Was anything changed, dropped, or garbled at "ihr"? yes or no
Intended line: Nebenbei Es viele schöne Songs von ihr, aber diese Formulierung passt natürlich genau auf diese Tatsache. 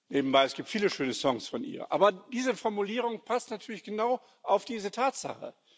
no